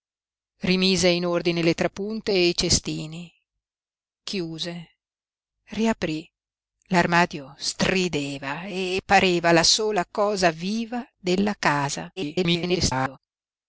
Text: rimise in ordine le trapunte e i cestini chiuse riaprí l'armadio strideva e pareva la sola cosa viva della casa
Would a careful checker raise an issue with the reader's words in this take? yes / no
yes